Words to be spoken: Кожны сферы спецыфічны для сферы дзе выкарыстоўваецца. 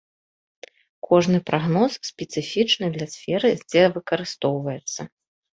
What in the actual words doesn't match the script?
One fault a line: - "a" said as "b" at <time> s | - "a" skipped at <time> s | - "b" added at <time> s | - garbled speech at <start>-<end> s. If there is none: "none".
- "сферы" said as "прагноз" at 1.5 s